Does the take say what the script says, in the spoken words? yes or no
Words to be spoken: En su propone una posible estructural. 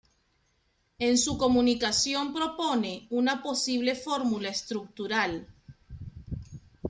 no